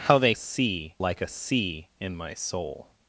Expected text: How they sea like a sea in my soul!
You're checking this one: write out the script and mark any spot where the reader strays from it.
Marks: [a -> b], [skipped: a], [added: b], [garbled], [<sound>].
How they sea like a sea in my soul!